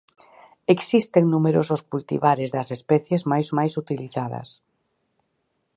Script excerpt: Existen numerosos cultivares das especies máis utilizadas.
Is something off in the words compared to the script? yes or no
yes